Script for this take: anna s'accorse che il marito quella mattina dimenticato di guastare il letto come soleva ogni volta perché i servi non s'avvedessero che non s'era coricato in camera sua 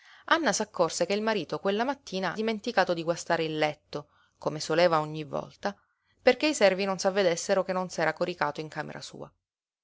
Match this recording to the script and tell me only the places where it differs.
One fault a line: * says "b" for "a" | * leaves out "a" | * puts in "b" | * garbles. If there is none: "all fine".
all fine